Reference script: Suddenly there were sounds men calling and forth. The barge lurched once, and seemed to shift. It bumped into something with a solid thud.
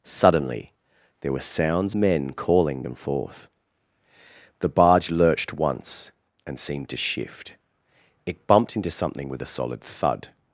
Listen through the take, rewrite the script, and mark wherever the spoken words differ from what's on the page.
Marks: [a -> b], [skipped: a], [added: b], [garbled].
Suddenly there were sounds men calling and forth. The barge lurched once, and seemed to shift. It bumped into something with a solid thud.